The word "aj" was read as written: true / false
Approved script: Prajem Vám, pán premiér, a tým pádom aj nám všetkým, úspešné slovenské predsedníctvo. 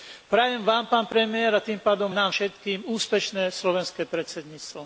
false